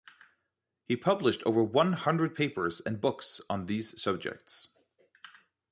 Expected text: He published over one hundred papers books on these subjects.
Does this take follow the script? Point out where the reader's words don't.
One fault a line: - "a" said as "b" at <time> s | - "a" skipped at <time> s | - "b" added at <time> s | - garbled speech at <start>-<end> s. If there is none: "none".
- "and" added at 2.8 s